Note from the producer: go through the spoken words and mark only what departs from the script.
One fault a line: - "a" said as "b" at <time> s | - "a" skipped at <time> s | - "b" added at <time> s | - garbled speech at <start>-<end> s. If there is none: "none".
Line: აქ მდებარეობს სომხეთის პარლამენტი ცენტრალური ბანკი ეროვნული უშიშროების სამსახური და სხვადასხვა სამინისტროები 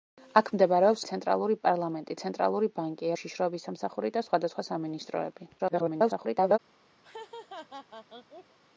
- "სომხეთის" said as "ცენტრალური" at 1.1 s
- "ეროვნული" skipped at 3.1 s
- garbled speech at 5.6-6.6 s